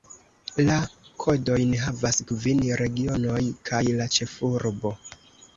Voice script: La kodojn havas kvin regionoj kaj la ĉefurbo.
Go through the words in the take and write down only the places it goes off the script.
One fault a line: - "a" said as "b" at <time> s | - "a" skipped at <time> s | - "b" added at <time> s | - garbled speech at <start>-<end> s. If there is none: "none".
none